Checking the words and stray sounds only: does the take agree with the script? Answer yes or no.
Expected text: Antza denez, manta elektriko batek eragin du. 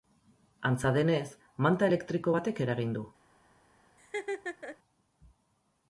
no